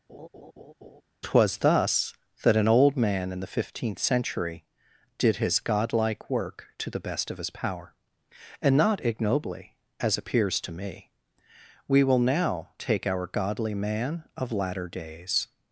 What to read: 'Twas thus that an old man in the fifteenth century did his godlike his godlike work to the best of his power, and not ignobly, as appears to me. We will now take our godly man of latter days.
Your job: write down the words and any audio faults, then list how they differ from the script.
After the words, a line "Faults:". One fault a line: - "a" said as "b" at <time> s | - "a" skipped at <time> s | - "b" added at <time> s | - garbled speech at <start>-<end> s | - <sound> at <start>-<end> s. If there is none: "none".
'Twas thus that an old man in the fifteenth century did his godlike work to the best of his power, and not ignobly, as appears to me. We will now take our godly man of latter days.
Faults:
- laugh at 0.1-1.0 s
- "his godlike" skipped at 6.3 s